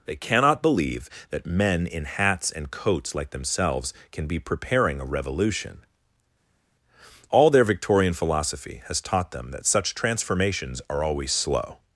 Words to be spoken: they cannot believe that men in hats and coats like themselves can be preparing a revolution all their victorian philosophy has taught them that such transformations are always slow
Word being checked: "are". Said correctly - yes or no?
yes